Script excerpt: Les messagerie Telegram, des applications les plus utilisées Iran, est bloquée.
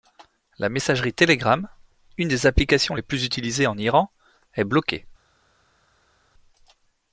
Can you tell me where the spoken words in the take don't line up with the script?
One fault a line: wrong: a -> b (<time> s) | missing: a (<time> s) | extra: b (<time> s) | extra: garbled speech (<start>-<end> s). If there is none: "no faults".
wrong: Les -> La (0.6 s)
extra: une (2.2 s)
extra: en (3.7 s)